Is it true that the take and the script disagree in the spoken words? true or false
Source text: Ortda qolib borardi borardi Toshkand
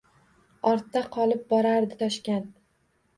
true